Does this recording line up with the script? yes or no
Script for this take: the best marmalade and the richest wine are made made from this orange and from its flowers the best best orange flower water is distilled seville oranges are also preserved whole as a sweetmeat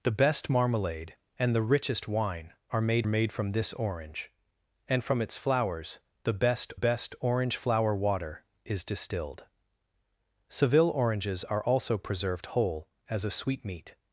yes